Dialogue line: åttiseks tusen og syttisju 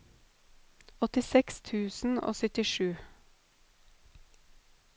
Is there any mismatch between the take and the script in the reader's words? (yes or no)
no